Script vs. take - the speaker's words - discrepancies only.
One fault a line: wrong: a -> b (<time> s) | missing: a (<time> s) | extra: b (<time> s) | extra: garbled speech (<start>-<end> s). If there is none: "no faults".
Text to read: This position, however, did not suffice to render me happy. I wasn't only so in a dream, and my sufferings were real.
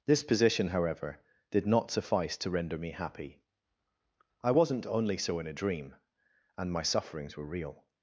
no faults